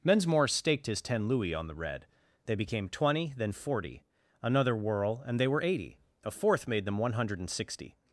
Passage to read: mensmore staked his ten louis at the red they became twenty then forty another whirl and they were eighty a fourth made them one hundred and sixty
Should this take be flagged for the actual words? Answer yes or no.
yes